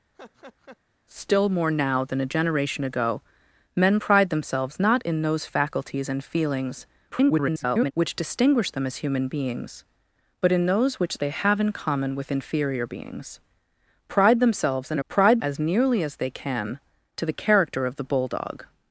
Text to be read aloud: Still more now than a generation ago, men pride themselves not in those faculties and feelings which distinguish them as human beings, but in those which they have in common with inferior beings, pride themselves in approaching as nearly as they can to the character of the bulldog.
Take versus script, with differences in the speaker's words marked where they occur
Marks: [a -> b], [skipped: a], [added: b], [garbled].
Still more now than a generation ago, men pride themselves not in those faculties and feelings [garbled] which distinguish them as human beings, but in those which they have in common with inferior beings, pride themselves in [approaching -> pride] as nearly as they can to the character of the bulldog.